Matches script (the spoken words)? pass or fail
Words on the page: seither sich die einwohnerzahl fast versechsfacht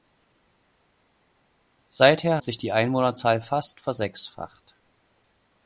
pass